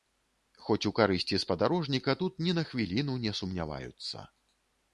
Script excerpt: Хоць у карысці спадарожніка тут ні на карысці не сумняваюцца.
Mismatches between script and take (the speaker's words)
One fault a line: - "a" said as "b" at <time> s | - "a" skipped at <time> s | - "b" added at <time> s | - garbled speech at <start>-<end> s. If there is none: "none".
- "карысці" said as "хвіліну" at 2.7 s